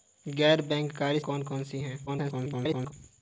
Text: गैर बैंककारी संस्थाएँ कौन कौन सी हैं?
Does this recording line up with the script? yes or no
no